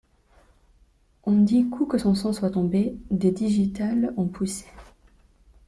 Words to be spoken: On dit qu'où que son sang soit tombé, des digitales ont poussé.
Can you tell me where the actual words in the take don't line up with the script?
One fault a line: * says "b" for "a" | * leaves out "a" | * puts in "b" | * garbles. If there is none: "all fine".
all fine